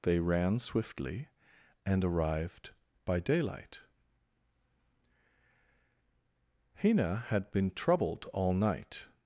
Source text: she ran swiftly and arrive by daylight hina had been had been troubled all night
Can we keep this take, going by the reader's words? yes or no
no